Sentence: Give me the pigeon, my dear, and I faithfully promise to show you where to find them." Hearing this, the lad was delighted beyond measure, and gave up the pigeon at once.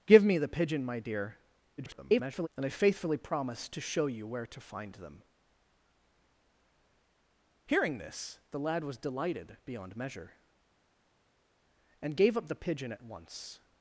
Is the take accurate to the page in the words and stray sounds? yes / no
no